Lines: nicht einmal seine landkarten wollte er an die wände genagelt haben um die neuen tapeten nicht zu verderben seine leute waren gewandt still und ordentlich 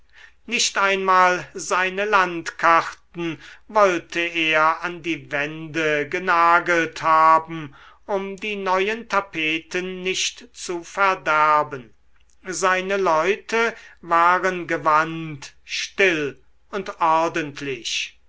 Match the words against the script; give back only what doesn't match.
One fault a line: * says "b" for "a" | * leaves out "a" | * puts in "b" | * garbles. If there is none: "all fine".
all fine